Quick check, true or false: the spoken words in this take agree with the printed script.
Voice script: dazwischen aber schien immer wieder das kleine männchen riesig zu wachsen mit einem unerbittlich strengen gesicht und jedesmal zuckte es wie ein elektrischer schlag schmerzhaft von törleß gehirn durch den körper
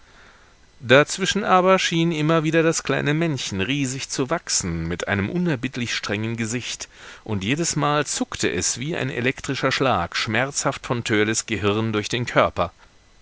true